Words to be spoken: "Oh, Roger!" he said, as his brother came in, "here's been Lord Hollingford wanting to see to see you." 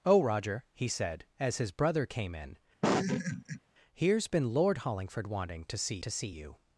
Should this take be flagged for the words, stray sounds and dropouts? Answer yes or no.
yes